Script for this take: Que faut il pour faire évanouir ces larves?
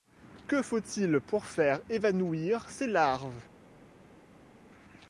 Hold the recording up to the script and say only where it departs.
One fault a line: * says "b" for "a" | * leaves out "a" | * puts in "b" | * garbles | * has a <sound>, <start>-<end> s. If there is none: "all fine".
all fine